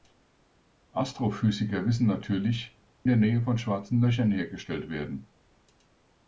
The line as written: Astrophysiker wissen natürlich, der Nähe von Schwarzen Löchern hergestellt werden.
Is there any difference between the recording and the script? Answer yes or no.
no